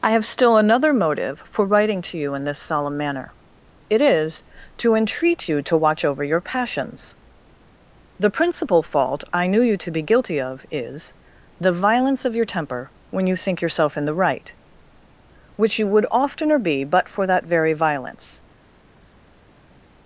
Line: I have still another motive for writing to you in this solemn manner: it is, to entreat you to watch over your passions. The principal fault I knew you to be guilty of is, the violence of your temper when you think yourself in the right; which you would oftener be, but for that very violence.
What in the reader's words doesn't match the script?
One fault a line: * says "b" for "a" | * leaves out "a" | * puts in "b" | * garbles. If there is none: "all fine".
all fine